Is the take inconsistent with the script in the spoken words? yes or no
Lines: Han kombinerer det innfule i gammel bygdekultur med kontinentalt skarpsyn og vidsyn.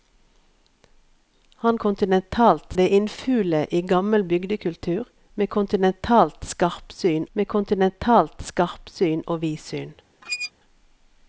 yes